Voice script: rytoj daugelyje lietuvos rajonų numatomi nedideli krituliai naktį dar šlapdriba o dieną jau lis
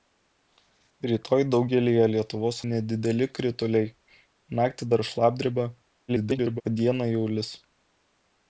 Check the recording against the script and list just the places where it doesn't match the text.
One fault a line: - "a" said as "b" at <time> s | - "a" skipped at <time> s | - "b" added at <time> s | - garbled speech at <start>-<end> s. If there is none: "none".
- "rajonų numatomi" skipped at 2.6 s
- garbled speech at 6.1-6.6 s